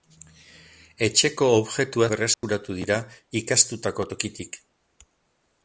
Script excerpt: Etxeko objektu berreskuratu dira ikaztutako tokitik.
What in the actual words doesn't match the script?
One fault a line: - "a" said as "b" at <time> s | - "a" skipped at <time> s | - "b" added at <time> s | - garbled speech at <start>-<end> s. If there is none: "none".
none